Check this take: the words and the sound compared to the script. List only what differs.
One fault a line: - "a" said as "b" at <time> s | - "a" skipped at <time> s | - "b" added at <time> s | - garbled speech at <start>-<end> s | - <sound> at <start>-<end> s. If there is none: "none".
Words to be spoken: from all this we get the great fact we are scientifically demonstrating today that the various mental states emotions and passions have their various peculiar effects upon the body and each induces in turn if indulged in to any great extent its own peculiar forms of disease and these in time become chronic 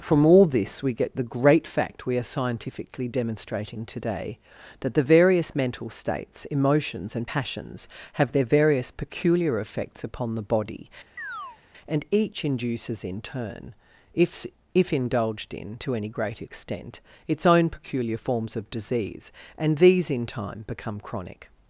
- chirp at 11.2-11.6 s
- "if" added at 14.7 s